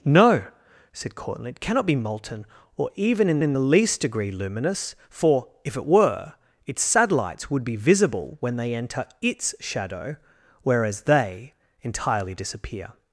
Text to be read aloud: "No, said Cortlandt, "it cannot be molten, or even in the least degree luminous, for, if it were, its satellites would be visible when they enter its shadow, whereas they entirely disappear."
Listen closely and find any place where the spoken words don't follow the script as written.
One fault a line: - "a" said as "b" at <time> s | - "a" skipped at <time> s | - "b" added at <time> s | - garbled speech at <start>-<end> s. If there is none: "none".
- "in" added at 3.4 s